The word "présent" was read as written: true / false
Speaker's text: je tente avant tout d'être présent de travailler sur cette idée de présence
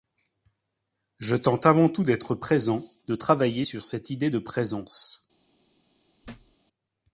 true